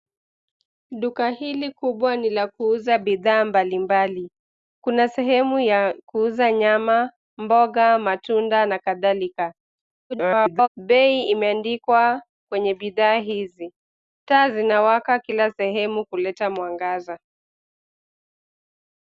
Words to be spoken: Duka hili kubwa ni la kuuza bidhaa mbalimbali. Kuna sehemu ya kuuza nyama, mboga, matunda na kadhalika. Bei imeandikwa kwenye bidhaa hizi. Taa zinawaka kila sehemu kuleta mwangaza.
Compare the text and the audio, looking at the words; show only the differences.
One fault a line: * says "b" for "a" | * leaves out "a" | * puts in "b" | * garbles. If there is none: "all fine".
* garbles